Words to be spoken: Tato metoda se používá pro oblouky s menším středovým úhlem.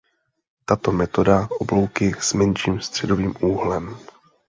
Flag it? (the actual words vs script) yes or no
yes